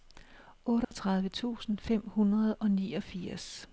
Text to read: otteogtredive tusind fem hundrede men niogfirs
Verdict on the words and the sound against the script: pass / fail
fail